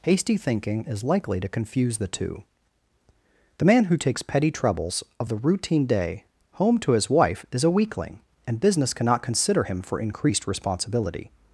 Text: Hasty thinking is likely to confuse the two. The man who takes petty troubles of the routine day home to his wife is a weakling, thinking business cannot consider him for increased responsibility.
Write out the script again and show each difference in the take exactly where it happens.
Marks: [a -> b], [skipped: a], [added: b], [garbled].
Hasty thinking is likely to confuse the two. The man who takes petty troubles of the routine day home to his wife is a weakling, [thinking -> and] business cannot consider him for increased responsibility.